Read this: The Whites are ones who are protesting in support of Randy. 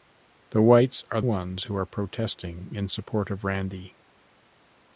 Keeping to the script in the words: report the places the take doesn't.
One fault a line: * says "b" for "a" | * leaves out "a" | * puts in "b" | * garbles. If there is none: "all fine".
all fine